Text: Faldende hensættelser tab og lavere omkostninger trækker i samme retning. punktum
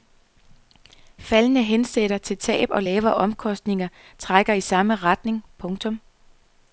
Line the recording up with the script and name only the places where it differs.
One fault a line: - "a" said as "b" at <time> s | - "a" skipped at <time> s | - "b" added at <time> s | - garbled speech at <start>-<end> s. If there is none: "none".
- "til" added at 2.2 s